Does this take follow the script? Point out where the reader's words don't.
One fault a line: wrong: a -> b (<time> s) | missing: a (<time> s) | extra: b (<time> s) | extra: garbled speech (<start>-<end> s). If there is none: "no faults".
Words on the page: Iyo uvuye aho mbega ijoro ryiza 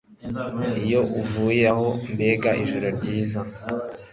no faults